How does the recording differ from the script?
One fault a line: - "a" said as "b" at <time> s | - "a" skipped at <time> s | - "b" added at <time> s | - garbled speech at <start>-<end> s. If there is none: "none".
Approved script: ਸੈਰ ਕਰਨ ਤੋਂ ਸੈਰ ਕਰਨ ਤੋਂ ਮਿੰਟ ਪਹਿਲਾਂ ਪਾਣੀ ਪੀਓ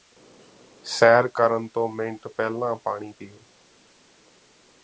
- "ਸੈਰ ਕਰਨ ਤੋਂ" skipped at 1.9 s